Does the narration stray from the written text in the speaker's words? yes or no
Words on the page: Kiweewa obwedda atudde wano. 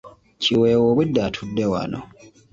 no